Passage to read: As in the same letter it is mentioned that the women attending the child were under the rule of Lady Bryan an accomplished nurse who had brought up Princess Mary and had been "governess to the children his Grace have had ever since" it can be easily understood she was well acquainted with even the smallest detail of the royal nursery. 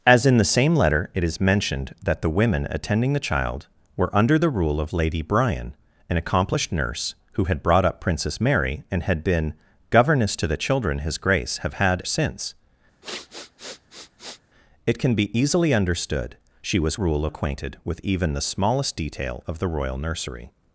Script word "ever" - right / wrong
wrong